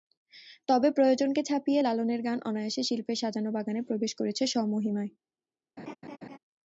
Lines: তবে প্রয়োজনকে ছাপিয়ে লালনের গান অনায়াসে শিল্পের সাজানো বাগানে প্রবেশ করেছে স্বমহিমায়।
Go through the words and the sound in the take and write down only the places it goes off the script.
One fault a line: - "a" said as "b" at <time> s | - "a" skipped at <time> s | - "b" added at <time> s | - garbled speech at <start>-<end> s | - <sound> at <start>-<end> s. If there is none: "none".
- laugh at 5.8-6.4 s